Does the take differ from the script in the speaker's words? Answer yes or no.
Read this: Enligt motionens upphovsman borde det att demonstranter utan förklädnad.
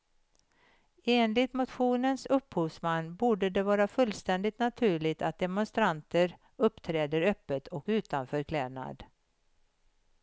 yes